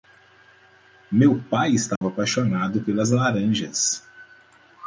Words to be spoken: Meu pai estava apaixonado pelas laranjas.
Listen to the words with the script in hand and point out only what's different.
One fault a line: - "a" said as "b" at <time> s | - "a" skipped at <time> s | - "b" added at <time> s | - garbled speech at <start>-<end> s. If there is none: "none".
none